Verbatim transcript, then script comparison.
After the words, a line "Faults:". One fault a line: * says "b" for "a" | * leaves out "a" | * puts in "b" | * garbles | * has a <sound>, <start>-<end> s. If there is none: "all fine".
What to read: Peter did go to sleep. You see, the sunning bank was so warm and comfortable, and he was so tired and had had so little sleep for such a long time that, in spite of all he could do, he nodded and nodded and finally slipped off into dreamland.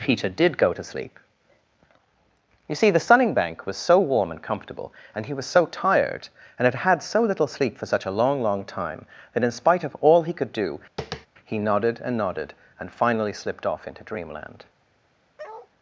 Peter did go to sleep. You see, the sunning bank was so warm and comfortable, and he was so tired and had had so little sleep for such a long long time that, in spite of all he could do, he nodded and nodded and finally slipped off into dreamland.
Faults:
* puts in "long"
* has a tap, 11.0-11.3 s
* has a bark, 15.4-15.7 s